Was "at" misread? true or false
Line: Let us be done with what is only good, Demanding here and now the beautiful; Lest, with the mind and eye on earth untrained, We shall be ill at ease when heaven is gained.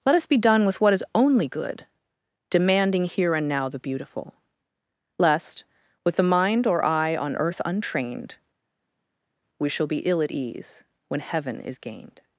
false